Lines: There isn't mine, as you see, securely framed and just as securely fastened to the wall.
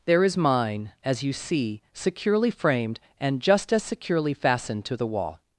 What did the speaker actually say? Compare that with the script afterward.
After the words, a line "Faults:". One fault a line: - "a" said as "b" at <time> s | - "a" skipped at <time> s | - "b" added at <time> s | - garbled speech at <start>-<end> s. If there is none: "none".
There is mine, as you see, securely framed and just as securely fastened to the wall.
Faults:
- "isn't" said as "is" at 0.2 s